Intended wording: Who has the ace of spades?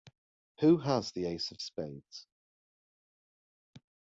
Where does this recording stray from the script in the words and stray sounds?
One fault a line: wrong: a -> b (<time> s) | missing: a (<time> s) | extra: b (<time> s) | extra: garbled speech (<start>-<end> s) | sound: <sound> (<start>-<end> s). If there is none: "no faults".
no faults